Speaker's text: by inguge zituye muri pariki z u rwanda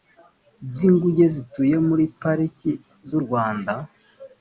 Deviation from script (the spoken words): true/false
false